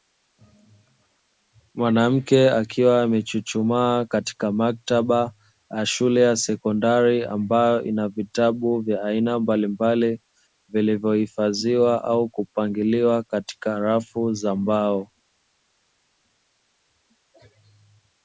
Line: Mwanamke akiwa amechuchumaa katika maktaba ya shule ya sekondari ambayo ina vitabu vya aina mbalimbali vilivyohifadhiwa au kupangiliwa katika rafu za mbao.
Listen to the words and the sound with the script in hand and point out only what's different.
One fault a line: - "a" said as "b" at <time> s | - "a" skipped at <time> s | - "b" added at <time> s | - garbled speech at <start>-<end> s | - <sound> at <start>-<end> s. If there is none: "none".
none